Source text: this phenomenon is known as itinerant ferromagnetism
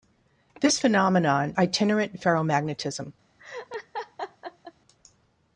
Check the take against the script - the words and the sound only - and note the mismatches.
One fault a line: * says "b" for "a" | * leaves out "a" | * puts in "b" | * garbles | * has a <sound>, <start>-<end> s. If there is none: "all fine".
* leaves out "is known as"
* has a laugh, 3.4-4.7 s